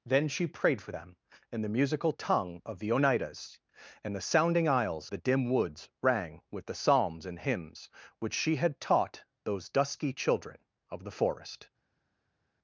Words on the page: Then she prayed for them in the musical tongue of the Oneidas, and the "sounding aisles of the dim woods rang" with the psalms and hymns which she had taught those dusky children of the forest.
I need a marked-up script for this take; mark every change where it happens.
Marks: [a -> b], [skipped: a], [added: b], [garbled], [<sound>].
Then she prayed for them in the musical tongue of the Oneidas, and the "sounding aisles [skipped: of] the dim woods rang" with the psalms and hymns which she had taught those dusky children of the forest.